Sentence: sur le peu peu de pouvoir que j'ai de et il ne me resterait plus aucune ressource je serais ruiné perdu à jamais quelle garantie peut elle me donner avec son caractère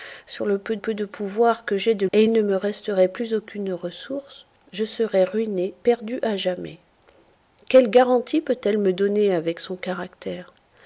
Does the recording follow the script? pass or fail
pass